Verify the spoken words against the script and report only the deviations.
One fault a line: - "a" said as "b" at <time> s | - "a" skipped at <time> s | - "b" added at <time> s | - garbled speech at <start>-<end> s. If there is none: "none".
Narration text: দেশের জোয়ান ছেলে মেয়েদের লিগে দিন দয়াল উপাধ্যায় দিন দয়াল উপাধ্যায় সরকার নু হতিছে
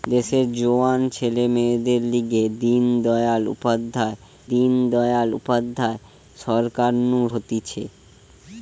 none